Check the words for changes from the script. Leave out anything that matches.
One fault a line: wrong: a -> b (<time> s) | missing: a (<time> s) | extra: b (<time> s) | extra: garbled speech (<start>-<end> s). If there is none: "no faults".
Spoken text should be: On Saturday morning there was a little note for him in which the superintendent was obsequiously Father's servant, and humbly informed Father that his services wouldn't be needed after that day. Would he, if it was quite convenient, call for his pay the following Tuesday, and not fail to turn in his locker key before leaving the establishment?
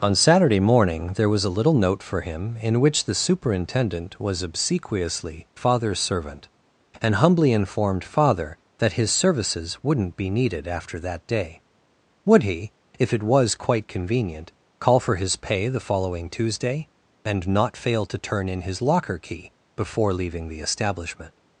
no faults